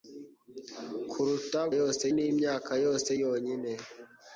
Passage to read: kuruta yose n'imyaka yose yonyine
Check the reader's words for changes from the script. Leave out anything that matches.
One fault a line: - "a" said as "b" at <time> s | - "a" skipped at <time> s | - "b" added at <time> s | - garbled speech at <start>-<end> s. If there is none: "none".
none